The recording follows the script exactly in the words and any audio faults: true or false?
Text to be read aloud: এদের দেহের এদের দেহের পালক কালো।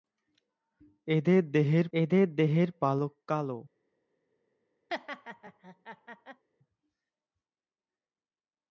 false